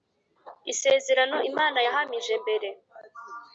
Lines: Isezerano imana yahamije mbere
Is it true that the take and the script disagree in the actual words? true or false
false